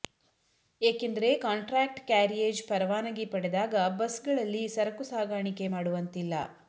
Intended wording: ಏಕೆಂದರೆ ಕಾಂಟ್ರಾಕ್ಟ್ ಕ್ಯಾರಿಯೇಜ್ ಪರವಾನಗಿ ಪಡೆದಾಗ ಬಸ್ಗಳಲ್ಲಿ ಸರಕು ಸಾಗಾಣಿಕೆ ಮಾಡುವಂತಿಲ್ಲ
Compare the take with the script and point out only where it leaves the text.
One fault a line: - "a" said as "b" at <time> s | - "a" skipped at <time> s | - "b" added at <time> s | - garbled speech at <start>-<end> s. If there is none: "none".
none